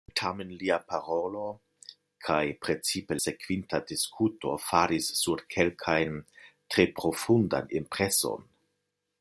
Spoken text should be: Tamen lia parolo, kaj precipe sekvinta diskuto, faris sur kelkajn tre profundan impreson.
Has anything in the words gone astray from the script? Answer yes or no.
no